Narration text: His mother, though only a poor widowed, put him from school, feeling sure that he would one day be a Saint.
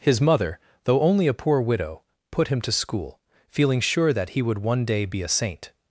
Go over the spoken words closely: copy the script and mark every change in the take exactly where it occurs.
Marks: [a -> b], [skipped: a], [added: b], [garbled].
His mother, though only a poor [widowed, -> widow] put him [from -> to] school, feeling sure that he would one day be a Saint.